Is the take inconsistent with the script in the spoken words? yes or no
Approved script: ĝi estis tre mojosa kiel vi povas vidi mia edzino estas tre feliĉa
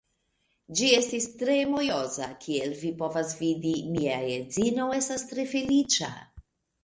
no